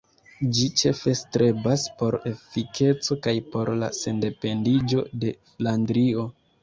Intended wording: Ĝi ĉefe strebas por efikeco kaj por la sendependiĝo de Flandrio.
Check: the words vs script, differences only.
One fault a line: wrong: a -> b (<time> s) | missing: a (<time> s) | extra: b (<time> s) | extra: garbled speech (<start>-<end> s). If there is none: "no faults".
no faults